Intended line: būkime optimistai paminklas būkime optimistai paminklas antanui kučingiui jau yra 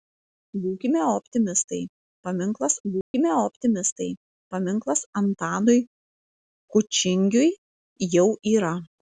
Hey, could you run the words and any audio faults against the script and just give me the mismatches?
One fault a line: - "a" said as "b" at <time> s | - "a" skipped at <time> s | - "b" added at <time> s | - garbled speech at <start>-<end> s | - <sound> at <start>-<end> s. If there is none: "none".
- dropout at 3.0-3.1 s